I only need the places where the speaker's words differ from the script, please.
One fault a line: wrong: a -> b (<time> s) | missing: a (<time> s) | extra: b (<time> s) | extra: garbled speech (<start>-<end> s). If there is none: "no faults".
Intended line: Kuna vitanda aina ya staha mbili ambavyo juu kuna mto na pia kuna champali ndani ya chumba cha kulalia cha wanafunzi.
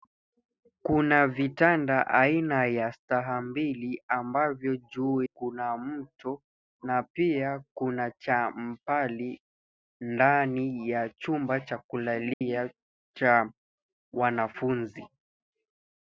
no faults